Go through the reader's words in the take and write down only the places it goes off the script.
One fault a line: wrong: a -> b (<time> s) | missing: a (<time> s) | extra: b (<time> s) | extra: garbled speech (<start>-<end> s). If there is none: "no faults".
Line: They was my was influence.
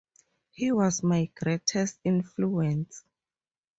wrong: They -> He (0.5 s)
wrong: was -> greatest (1.3 s)